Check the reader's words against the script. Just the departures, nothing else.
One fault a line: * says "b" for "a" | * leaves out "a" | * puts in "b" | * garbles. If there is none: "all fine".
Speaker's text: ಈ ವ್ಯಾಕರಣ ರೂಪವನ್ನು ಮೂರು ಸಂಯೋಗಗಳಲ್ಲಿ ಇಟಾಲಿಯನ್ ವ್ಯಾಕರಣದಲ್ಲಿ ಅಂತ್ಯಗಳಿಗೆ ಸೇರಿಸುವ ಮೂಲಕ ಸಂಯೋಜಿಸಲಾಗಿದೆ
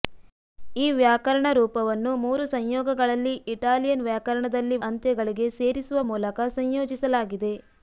all fine